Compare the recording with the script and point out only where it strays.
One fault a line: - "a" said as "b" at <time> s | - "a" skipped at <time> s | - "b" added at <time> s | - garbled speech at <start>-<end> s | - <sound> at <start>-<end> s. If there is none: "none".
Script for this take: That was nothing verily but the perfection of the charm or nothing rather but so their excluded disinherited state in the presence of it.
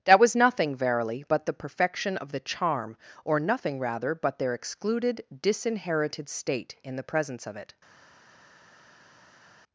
- "so" skipped at 4.4 s